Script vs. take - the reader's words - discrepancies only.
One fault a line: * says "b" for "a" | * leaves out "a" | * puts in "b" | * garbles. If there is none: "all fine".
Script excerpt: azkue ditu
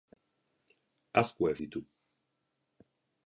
all fine